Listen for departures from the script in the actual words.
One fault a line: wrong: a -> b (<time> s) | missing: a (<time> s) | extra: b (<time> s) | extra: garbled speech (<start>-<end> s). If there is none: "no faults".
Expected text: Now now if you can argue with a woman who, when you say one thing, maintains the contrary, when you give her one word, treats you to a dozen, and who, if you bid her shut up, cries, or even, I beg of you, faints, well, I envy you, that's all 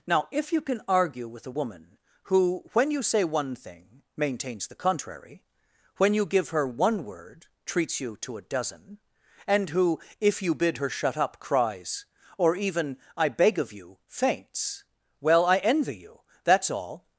missing: now (0.3 s)